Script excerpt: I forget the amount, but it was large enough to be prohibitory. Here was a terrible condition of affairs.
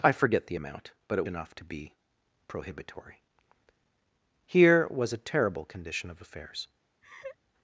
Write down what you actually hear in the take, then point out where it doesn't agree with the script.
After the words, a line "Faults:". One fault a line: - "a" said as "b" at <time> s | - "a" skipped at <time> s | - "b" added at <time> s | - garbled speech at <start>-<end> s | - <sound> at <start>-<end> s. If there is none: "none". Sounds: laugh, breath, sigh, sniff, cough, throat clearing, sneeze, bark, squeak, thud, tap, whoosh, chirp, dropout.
I forget the amount, but it enough to be prohibitory. Here was a terrible condition of affairs.
Faults:
- "was large" skipped at 1.3 s
- laugh at 7.0-7.4 s